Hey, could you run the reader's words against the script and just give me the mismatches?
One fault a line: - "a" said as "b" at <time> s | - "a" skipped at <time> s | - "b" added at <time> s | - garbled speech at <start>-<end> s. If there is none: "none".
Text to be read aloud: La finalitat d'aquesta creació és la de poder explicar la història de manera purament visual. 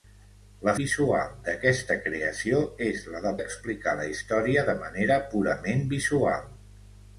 - "finalitat" said as "visual" at 0.8 s
- "poder" skipped at 3.3 s